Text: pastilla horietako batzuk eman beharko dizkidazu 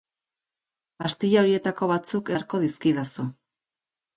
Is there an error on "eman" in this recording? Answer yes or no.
yes